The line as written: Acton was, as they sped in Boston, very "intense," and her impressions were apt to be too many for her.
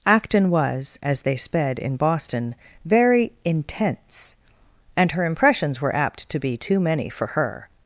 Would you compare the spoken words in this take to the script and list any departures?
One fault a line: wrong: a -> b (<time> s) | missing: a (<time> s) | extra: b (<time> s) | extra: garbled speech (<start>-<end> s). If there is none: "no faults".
no faults